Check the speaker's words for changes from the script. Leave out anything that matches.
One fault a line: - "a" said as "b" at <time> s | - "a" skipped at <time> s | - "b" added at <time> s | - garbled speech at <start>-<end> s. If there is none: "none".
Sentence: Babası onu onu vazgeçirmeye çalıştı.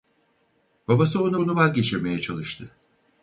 none